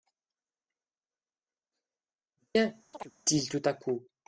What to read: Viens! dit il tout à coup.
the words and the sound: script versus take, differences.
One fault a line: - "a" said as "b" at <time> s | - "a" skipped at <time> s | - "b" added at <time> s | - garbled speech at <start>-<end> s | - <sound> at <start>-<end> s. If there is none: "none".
- "dit" skipped at 2.7 s
- chirp at 2.9-3.1 s